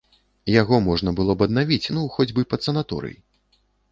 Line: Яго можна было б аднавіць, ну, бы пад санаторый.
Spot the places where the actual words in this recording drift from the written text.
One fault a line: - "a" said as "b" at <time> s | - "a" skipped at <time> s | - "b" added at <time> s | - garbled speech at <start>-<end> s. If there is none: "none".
- "хоць" added at 2.2 s